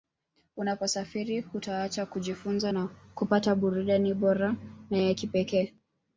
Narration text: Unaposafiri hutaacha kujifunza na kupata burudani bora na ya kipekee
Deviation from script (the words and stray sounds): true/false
false